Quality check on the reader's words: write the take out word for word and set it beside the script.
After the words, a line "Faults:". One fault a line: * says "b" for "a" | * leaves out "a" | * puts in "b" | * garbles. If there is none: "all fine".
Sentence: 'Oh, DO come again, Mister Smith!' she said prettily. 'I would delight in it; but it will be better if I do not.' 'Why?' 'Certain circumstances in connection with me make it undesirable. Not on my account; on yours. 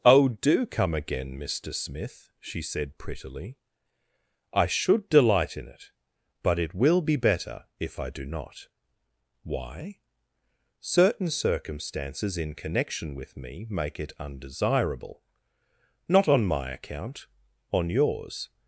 'Oh, DO come again, Mister Smith!' she said prettily. 'I should delight in it; but it will be better if I do not.' 'Why?' 'Certain circumstances in connection with me make it undesirable. Not on my account; on yours.
Faults:
* says "should" for "would"